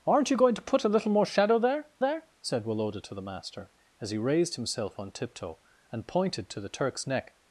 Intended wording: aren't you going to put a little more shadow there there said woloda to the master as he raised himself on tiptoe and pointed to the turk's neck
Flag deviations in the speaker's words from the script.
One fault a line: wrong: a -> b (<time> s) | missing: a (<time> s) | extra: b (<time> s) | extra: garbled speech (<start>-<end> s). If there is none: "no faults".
no faults